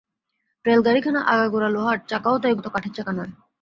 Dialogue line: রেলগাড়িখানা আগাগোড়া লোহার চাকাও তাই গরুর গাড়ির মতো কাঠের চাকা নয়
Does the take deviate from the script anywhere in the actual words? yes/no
yes